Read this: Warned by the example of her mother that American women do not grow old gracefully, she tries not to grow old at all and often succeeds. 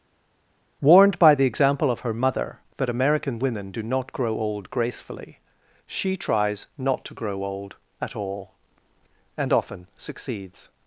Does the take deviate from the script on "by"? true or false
false